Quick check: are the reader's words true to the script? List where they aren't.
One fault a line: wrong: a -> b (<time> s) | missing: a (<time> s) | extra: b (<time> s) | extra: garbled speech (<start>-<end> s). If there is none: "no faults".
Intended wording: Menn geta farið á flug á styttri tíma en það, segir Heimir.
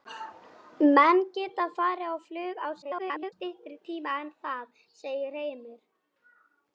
extra: garbled speech (2.8-3.3 s)